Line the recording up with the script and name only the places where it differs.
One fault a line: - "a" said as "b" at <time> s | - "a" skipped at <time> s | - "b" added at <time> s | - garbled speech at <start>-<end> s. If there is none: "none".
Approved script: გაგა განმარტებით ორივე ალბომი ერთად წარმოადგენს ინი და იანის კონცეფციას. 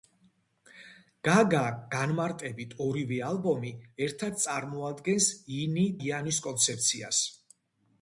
- "და" skipped at 5.8 s